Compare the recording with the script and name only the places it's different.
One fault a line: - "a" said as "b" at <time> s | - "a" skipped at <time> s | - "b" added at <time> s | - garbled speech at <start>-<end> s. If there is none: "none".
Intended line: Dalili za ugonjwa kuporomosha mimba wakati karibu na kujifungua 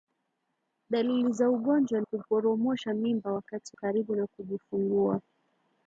none